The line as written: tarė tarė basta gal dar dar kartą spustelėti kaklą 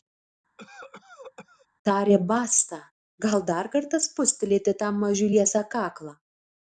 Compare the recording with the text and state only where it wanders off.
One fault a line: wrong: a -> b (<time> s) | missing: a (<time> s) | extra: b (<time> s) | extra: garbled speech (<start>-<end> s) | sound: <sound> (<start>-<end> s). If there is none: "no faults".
sound: cough (0.6-1.7 s)
missing: tarė (2.2 s)
missing: dar (3.7 s)
extra: tam mažiui liesą (4.8 s)